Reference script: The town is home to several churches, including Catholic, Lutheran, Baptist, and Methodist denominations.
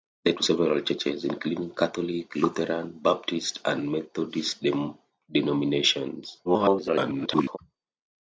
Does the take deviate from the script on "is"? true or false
true